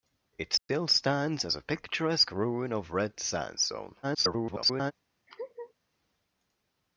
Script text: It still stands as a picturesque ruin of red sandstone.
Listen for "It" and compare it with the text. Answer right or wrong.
right